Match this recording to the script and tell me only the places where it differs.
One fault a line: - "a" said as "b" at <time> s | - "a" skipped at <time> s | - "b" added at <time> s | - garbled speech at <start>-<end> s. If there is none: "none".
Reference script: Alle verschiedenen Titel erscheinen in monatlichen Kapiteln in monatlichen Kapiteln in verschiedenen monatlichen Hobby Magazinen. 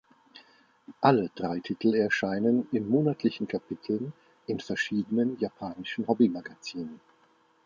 - "verschiedenen" said as "drei" at 1.4 s
- "monatlichen Kapiteln in" skipped at 4.6 s
- "monatlichen" said as "japanischen" at 5.4 s